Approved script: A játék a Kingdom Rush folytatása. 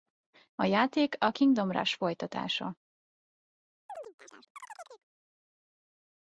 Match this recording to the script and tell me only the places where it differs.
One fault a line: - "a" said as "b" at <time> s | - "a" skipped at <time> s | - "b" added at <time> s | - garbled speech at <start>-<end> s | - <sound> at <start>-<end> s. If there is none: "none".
- chirp at 3.9-5.0 s